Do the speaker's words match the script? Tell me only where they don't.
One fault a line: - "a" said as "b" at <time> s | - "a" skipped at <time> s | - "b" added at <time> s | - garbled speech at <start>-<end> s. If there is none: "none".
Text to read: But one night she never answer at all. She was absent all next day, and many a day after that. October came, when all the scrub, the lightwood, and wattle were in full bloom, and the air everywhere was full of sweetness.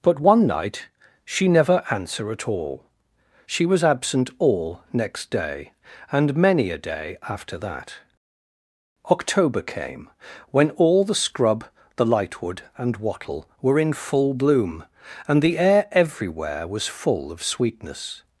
none